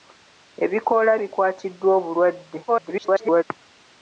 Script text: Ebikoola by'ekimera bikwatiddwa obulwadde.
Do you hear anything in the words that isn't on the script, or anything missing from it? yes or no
yes